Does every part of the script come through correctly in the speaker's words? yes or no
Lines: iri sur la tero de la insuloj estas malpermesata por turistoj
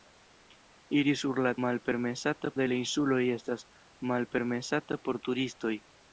no